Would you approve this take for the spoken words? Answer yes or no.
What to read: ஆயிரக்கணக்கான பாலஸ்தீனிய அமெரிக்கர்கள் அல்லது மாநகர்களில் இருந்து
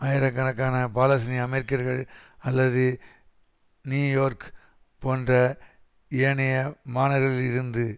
no